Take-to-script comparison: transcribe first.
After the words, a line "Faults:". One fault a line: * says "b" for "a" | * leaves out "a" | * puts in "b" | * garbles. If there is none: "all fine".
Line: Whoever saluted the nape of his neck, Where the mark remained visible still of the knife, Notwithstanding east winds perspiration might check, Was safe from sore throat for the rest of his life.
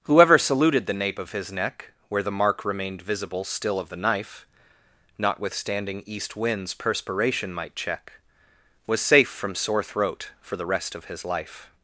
Whoever saluted the nape of his neck, Where the mark remained visible still of the knife, Notwithstanding east winds perspiration might check, Was safe from sore throat for the rest of his life.
Faults:
all fine